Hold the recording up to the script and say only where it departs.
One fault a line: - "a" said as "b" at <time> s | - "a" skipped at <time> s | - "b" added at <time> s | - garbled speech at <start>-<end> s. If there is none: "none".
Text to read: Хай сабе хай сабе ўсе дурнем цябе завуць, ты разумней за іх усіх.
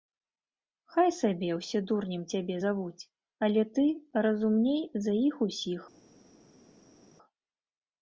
- "хай сабе" skipped at 1.5 s
- "але" added at 3.5 s